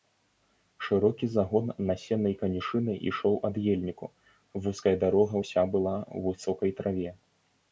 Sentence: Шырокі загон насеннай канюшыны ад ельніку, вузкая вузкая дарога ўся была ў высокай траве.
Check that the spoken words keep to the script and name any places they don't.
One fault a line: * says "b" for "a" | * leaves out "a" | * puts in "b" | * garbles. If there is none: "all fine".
* puts in "ішоў"
* leaves out "вузкая"